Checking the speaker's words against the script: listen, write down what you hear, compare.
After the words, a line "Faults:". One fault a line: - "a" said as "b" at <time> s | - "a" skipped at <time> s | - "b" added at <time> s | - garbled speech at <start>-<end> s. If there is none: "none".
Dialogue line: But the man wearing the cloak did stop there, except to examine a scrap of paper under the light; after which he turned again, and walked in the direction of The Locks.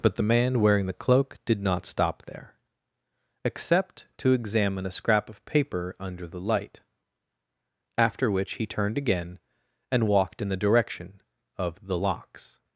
But the man wearing the cloak did not stop there, except to examine a scrap of paper under the light; after which he turned again, and walked in the direction of The Locks.
Faults:
- "not" added at 1.6 s